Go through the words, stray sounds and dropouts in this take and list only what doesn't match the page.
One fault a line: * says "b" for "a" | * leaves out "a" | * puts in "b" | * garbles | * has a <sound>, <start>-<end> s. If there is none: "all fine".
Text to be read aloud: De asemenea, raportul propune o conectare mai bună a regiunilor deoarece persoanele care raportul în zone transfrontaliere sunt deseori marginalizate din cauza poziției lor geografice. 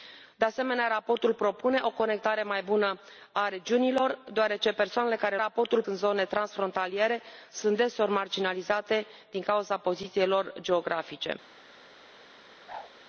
* has a whoosh, 12.7-12.9 s